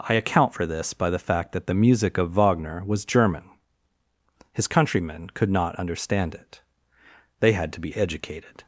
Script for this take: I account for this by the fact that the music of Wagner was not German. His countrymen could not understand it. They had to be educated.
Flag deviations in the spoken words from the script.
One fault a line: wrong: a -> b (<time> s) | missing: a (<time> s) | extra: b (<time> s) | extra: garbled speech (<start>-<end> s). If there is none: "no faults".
missing: not (3.0 s)